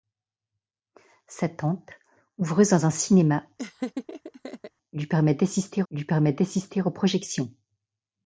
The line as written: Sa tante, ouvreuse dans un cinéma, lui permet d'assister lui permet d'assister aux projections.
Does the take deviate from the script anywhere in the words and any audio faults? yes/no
yes